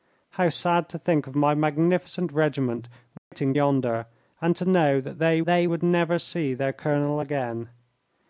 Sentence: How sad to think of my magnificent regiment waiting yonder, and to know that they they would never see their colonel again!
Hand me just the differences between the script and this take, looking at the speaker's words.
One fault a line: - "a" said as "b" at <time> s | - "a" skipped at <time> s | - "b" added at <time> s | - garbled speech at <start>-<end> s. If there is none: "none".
none